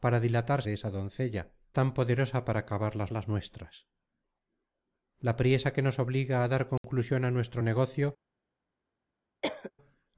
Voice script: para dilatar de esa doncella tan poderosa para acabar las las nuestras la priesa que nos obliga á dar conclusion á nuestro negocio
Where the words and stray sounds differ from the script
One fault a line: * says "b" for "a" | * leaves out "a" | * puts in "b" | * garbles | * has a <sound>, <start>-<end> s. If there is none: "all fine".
* has a dropout, 6.8-6.8 s
* has a cough, 9.4-9.7 s